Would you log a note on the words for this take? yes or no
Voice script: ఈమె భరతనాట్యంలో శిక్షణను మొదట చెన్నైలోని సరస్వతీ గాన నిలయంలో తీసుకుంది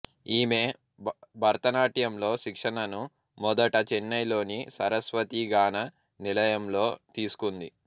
no